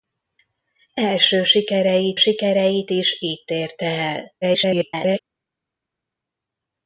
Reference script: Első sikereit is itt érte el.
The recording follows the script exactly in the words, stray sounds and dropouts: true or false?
false